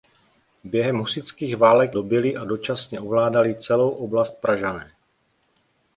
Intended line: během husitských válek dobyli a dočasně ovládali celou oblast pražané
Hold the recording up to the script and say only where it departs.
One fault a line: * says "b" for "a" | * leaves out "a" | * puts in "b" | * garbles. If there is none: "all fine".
all fine